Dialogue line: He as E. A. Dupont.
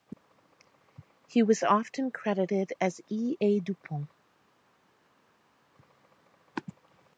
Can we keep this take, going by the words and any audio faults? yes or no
no